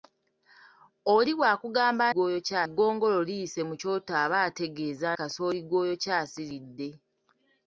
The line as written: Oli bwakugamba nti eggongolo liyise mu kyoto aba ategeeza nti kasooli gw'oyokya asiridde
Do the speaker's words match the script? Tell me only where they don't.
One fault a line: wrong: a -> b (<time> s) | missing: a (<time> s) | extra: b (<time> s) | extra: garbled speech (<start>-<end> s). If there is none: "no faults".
wrong: nti -> gw'oyokya (2.1 s)
missing: nti (5.1 s)